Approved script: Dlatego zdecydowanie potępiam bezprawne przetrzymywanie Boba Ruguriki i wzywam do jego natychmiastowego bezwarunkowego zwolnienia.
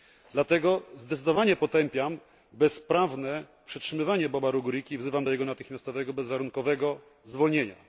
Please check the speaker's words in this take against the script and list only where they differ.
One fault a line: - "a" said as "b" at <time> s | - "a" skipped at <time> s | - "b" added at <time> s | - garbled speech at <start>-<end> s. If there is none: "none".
none